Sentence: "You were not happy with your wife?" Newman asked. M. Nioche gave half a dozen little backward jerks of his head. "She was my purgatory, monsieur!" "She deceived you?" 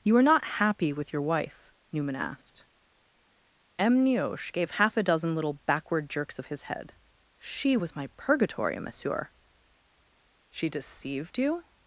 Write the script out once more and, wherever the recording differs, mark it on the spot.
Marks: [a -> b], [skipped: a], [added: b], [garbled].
"You [were -> are] not happy with your wife?" Newman asked. M. Nioche gave half a dozen little backward jerks of his head. "She was my purgatory, monsieur!" "She deceived you?"